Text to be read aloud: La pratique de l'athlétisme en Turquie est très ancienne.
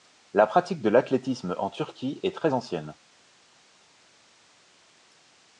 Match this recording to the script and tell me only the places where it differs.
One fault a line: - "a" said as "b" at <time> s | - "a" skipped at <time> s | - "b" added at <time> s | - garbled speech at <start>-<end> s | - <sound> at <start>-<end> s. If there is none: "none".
none